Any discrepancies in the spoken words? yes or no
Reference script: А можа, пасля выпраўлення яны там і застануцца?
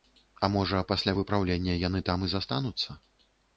no